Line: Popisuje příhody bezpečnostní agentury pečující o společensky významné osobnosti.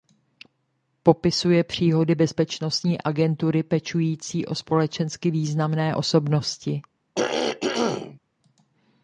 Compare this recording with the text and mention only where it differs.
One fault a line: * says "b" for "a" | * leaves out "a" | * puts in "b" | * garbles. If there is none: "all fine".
all fine